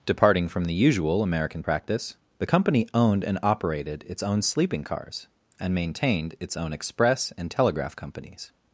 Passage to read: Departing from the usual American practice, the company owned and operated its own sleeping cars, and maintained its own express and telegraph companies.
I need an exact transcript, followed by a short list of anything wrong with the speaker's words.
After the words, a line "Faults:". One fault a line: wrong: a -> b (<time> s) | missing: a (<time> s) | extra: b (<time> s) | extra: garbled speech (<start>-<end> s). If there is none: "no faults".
Departing from the usual American practice, the company owned and operated its own sleeping cars, and maintained its own express and telegraph companies.
Faults:
no faults